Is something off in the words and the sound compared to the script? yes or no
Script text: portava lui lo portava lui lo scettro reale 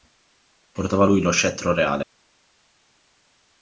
yes